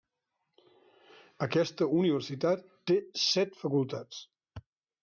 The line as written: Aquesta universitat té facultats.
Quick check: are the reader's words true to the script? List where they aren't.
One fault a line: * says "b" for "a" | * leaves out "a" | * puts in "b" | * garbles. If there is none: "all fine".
* puts in "set"